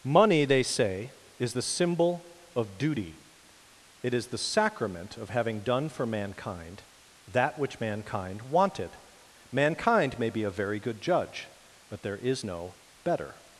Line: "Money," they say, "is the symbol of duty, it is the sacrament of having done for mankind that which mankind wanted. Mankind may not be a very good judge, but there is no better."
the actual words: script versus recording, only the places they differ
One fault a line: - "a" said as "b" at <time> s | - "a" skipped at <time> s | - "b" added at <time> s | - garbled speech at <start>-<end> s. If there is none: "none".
- "not" skipped at 10.3 s